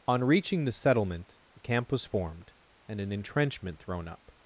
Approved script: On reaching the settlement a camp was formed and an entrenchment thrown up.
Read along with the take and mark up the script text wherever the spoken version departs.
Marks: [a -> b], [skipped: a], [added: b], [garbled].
On reaching the settlement a camp was formed and an entrenchment thrown up.